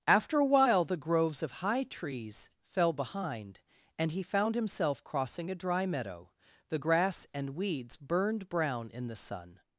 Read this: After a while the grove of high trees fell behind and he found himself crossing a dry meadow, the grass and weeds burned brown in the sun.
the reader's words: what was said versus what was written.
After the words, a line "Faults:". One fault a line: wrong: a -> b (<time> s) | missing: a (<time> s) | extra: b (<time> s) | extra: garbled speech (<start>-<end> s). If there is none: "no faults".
After a while the groves of high trees fell behind and he found himself crossing a dry meadow, the grass and weeds burned brown in the sun.
Faults:
wrong: grove -> groves (1.0 s)